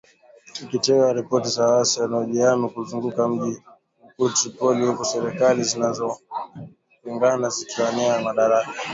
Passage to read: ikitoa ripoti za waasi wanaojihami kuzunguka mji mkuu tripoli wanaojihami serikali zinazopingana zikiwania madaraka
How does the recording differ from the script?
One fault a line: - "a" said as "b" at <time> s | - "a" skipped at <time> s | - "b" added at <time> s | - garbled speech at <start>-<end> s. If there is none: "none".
- "wanaojihami" said as "huku" at 4.9 s